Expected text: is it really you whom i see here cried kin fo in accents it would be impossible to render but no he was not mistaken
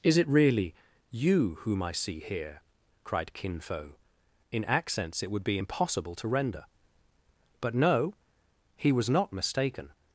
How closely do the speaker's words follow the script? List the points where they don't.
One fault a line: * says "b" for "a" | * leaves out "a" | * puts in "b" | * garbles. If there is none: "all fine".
all fine